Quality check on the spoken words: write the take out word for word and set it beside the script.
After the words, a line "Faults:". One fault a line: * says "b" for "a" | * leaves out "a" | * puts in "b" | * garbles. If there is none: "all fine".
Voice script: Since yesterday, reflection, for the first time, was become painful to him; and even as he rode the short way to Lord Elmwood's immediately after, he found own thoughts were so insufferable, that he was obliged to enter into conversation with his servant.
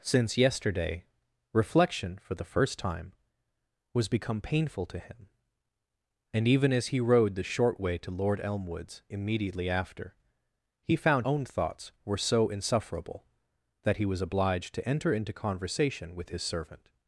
Since yesterday, reflection, for the first time, was become painful to him; and even as he rode the short way to Lord Elmwood's immediately after, he found own thoughts were so insufferable, that he was obliged to enter into conversation with his servant.
Faults:
all fine